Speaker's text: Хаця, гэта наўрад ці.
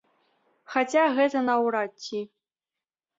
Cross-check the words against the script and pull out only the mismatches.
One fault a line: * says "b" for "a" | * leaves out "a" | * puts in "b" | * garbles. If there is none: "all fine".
all fine